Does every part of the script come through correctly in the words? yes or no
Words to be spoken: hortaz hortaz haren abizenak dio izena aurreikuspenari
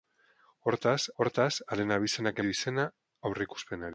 yes